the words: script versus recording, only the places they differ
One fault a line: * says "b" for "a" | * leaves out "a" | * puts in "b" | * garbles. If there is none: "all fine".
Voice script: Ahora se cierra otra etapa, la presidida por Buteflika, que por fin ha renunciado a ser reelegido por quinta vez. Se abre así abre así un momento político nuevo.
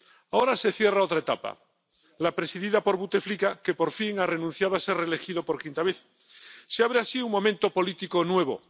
* leaves out "abre así"